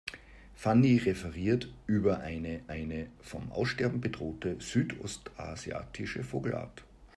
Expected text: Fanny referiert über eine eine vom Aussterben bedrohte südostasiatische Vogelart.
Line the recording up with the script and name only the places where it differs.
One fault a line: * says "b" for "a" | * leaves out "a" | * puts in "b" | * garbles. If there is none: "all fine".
all fine